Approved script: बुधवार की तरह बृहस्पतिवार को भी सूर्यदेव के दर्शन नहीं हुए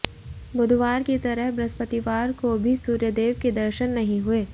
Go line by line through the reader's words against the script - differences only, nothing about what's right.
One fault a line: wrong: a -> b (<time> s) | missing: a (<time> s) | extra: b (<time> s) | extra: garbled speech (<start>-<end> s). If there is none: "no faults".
no faults